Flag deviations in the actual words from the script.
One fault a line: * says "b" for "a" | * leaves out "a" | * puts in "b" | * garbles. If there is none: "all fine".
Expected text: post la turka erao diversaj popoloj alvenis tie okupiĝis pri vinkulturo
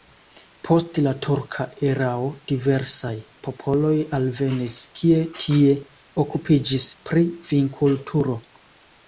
* puts in "kie"